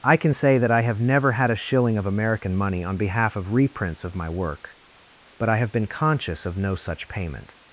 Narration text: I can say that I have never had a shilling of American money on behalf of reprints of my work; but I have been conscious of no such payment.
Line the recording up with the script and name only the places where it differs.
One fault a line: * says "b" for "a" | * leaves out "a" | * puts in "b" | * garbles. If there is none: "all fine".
all fine